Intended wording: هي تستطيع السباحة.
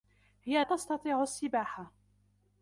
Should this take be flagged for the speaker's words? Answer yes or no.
no